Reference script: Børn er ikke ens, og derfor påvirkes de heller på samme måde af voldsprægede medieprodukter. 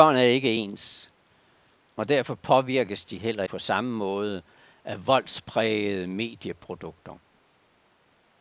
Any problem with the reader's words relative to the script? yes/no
no